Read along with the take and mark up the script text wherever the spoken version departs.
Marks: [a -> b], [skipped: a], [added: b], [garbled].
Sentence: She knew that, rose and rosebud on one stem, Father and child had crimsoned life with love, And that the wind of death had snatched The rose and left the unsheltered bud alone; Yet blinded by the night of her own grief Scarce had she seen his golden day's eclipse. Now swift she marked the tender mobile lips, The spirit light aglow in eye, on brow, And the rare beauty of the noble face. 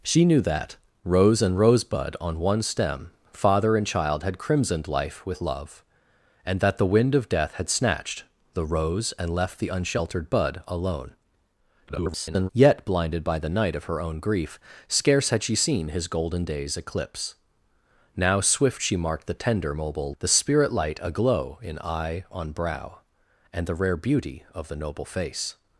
She knew that, rose and rosebud on one stem, Father and child had crimsoned life with love, And that the wind of death had snatched The rose and left the unsheltered bud alone; [garbled] Yet blinded by the night of her own grief Scarce had she seen his golden day's eclipse. Now swift she marked the tender mobile [skipped: lips,] The spirit light aglow in eye, on brow, And the rare beauty of the noble face.